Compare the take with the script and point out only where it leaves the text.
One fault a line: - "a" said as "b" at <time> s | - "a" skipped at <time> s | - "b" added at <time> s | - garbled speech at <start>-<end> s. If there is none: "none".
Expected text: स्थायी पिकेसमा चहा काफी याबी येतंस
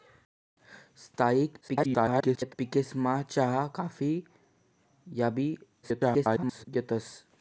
- garbled speech at 1.6-2.5 s
- garbled speech at 5.8-6.7 s